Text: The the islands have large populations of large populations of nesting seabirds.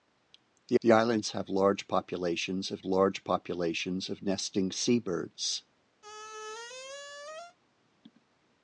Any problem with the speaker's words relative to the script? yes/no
no